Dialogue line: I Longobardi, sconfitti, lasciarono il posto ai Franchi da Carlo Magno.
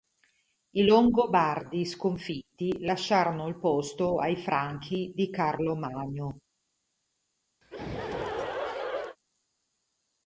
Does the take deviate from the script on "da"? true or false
true